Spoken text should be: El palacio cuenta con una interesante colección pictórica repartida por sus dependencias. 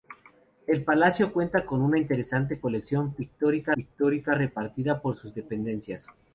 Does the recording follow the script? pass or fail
fail